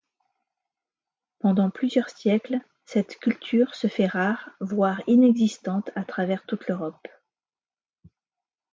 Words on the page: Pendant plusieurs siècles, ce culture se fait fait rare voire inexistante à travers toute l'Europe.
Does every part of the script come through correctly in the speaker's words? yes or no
no